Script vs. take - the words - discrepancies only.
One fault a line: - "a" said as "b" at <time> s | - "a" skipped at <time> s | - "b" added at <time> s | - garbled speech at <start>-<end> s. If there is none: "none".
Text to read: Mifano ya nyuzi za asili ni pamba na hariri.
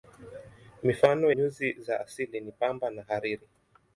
- "ya" skipped at 1.3 s